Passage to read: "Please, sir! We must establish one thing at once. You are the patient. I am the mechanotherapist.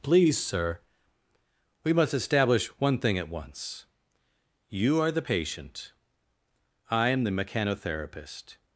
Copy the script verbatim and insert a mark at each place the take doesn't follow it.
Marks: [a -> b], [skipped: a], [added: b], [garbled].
"Please, sir! We must establish one thing at once. You are the patient. I am the mechanotherapist.